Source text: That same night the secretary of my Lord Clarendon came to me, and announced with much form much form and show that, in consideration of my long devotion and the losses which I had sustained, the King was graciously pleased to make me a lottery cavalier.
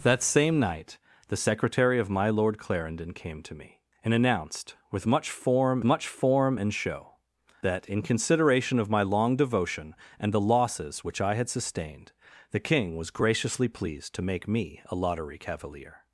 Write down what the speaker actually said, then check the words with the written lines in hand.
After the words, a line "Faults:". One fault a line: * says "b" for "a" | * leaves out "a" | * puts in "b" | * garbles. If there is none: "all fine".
That same night the secretary of my Lord Clarendon came to me, and announced with much form much form and show that, in consideration of my long devotion and the losses which I had sustained, the King was graciously pleased to make me a lottery cavalier.
Faults:
all fine